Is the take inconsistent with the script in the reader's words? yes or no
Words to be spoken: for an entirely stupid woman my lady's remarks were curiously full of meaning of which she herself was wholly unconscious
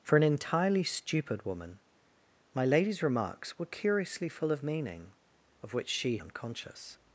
yes